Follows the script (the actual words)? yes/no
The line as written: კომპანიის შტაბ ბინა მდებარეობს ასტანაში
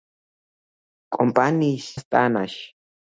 no